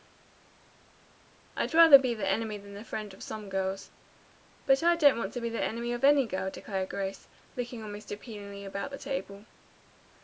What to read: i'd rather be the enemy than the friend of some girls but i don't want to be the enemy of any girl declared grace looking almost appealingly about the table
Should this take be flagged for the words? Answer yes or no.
no